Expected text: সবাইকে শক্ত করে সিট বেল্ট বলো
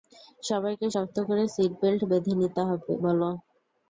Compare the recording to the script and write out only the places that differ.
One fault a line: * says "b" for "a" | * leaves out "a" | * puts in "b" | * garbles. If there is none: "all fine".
* puts in "বেঁধে নিতে"